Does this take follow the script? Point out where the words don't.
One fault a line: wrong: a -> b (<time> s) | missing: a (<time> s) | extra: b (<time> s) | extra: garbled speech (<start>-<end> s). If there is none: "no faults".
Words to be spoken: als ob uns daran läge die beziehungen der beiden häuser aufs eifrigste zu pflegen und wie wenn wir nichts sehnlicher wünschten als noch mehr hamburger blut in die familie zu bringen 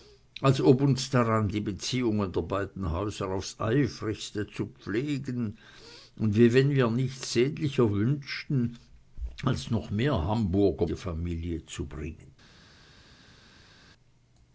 missing: läge (1.5 s)
missing: blut in (10.8 s)